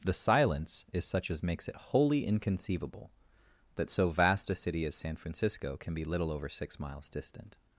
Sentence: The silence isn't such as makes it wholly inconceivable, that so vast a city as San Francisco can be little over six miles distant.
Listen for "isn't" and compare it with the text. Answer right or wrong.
wrong